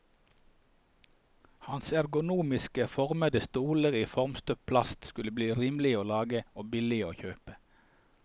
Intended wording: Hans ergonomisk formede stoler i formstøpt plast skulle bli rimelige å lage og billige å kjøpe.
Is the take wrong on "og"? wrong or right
right